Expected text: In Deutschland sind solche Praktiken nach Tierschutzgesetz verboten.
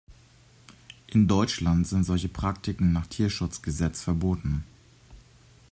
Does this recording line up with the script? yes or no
yes